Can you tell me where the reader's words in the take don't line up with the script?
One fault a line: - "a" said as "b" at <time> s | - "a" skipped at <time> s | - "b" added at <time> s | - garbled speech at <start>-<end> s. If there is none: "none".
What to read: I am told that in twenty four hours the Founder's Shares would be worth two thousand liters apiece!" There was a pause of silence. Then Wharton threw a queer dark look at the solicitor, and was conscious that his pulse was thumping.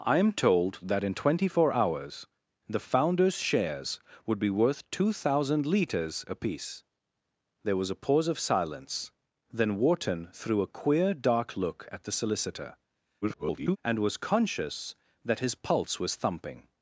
- garbled speech at 13.2-13.8 s